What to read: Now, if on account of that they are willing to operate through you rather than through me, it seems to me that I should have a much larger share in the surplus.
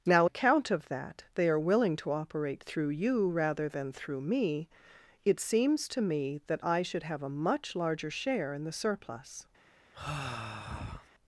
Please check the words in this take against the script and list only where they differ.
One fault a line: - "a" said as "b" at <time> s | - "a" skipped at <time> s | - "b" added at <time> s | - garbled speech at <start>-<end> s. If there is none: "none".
- "if on" skipped at 0.3 s